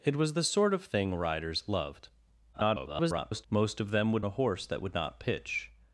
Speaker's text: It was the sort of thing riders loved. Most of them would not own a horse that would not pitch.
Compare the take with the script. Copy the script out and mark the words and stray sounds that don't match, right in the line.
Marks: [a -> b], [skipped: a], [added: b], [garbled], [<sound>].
It was the sort of thing riders loved. [garbled] Most of them would [skipped: not own] a horse that would not pitch.